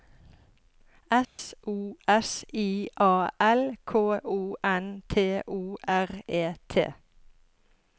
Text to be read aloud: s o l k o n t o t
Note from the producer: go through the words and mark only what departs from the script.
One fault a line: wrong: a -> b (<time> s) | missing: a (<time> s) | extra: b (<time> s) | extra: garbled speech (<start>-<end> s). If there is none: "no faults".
extra: s i a (2.1 s)
extra: r e (5.9 s)